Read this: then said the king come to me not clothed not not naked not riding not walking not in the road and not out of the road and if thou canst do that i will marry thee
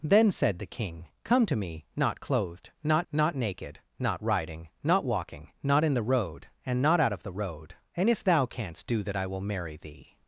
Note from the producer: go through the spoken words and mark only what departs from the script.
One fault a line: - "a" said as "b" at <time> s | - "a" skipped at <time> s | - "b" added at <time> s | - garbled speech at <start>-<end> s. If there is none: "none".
none